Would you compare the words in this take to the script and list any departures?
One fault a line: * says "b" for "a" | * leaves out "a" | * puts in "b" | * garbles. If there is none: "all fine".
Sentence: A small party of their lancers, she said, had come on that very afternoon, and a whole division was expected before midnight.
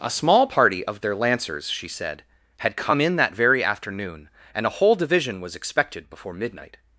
* says "in" for "on"